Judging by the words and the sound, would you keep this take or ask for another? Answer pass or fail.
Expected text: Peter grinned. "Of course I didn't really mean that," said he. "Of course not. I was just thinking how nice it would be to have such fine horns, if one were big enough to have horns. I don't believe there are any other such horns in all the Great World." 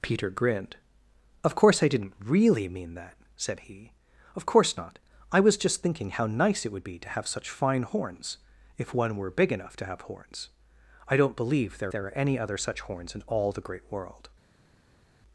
fail